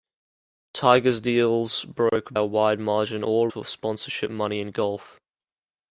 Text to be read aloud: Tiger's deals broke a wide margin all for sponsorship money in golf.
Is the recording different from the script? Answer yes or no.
no